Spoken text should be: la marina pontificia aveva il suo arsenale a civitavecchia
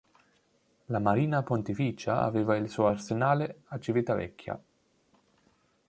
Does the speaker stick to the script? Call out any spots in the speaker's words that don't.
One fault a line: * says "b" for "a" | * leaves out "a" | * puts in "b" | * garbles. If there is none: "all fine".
all fine